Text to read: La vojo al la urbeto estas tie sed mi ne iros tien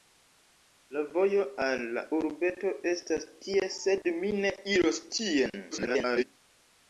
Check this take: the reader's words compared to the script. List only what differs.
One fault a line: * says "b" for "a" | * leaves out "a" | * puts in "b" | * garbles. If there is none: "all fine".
* garbles